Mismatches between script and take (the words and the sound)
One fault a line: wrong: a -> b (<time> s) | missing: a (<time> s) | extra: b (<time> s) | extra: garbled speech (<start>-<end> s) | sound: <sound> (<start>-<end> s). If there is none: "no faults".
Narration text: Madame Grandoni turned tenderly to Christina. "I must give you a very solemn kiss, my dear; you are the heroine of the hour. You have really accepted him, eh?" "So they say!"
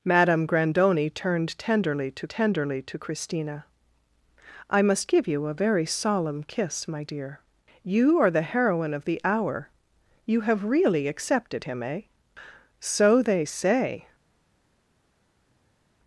extra: tenderly to (2.3 s)